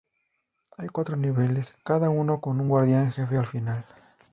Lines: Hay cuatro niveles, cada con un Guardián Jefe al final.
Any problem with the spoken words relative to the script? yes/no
yes